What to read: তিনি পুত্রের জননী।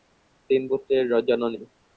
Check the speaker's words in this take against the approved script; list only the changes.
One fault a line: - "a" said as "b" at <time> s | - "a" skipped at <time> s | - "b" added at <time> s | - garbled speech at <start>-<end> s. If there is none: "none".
none